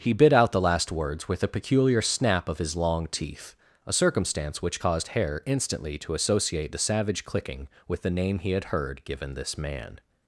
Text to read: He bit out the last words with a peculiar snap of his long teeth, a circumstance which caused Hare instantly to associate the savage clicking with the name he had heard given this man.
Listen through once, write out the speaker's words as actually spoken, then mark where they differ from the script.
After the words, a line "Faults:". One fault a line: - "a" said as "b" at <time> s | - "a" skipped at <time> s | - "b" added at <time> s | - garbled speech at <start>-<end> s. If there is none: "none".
He bit out the last words with a peculiar snap of his long teeth, a circumstance which caused Hare instantly to associate the savage clicking with the name he had heard given this man.
Faults:
none